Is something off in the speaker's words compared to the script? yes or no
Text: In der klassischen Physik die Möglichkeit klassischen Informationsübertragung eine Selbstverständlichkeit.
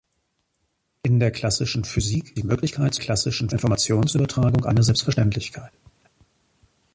no